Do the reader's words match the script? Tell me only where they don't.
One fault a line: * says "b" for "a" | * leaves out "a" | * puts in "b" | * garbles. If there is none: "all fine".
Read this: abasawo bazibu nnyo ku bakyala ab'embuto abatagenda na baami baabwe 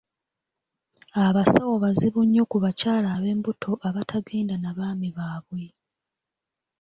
all fine